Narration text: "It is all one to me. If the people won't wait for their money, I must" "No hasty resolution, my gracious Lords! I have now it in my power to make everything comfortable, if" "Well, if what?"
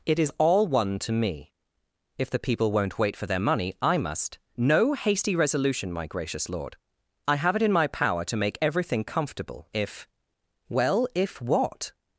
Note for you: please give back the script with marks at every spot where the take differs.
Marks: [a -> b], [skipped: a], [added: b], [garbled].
"It is all one to me. If the people won't wait for their money, I must" "No hasty resolution, my gracious [Lords! -> Lord] I have [skipped: now] it in my power to make everything comfortable, if" "Well, if what?"